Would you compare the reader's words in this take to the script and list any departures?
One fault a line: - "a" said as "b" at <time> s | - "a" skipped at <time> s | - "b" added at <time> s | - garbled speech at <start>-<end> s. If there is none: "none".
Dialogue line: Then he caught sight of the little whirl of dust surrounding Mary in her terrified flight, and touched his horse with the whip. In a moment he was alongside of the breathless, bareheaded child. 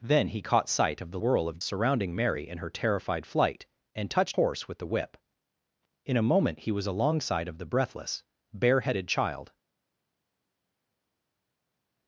- "little" skipped at 1.2 s
- "dust" skipped at 1.6 s
- "his" skipped at 4.4 s